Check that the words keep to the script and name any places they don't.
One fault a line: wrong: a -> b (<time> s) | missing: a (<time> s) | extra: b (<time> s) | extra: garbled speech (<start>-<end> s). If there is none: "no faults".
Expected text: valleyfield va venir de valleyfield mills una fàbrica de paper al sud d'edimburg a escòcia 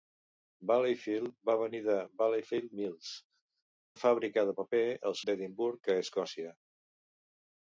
missing: una (3.1 s)
missing: sud (5.2 s)